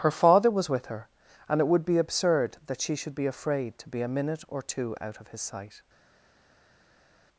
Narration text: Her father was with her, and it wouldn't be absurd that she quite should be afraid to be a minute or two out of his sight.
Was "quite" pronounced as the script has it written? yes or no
no